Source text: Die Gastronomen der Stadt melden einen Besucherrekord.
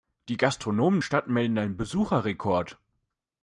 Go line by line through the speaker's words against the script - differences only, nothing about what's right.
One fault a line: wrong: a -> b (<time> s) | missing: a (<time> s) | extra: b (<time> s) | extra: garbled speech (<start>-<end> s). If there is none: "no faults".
missing: der (1.0 s)